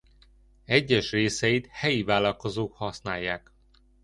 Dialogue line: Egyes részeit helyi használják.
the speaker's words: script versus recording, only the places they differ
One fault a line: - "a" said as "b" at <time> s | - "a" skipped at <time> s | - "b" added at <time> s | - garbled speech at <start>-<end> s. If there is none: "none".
- "vállalkozók" added at 2.0 s